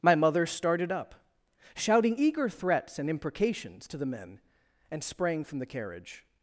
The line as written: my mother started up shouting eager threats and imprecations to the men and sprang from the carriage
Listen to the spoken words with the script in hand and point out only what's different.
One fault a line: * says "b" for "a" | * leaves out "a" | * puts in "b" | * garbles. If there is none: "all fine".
all fine